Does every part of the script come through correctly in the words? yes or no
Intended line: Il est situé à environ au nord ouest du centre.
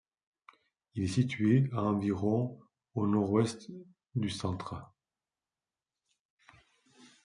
yes